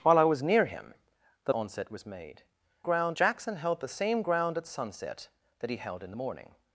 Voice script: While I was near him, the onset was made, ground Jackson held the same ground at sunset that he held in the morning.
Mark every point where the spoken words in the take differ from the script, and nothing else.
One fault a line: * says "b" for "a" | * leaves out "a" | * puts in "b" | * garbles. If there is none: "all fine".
all fine